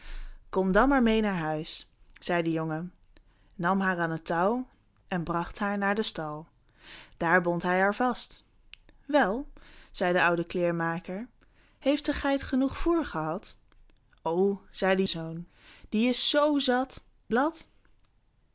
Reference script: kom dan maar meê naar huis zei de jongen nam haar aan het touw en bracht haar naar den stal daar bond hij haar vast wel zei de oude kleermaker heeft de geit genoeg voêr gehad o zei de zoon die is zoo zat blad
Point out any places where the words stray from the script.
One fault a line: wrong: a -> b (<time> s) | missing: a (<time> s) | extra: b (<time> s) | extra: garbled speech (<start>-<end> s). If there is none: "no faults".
no faults